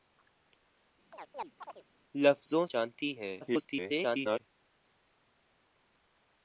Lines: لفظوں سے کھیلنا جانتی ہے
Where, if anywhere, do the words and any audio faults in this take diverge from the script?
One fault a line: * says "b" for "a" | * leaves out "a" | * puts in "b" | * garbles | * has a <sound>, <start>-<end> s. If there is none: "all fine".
* has a chirp, 1.1-1.8 s
* leaves out "سے کھیلنا"
* garbles